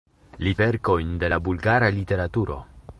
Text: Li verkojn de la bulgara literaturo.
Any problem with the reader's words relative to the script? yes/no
no